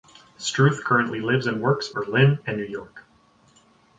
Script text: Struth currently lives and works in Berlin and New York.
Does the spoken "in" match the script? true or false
false